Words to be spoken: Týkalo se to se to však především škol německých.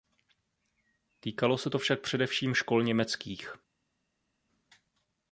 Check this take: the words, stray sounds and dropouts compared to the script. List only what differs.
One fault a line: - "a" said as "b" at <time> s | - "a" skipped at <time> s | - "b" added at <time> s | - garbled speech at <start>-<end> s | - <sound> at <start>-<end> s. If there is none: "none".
- "se to" skipped at 1.8 s